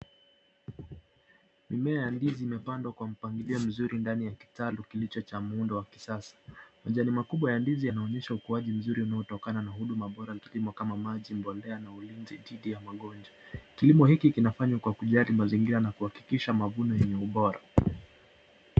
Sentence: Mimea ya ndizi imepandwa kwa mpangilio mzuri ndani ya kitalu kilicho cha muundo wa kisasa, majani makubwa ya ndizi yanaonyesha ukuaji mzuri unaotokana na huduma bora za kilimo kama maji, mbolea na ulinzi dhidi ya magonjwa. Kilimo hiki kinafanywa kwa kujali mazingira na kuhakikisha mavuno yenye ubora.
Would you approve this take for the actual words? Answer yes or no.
no